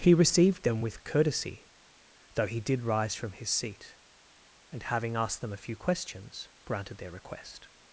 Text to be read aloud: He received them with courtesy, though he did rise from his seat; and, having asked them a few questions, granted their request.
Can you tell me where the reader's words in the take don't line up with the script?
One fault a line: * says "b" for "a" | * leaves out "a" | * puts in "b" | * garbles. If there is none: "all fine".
all fine